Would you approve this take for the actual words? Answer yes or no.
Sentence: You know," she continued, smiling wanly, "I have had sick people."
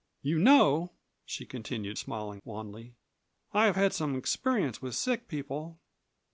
no